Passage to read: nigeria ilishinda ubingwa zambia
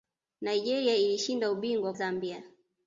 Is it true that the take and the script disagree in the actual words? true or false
false